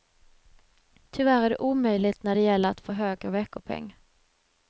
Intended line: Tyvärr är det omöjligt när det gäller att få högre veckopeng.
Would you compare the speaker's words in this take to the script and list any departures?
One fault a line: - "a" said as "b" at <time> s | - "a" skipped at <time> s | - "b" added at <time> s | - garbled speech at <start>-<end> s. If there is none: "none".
none